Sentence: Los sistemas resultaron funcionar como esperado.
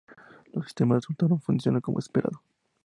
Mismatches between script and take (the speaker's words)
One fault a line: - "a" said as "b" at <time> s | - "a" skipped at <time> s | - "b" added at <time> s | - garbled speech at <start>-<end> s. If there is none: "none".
none